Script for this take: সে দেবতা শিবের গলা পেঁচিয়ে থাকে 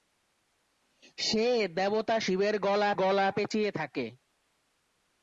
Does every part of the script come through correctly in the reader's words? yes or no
no